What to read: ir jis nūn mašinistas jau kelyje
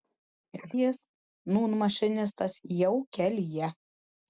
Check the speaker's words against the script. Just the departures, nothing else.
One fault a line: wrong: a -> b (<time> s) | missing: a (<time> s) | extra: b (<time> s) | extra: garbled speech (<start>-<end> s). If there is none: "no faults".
no faults